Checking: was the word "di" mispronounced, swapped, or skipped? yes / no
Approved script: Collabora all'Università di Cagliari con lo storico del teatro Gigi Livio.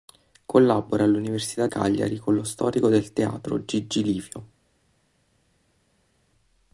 yes